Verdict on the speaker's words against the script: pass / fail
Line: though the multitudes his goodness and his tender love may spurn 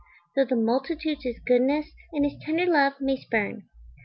pass